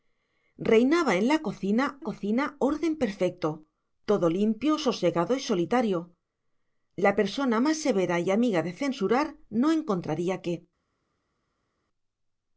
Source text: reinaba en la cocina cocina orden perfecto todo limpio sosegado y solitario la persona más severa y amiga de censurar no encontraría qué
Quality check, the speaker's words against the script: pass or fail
pass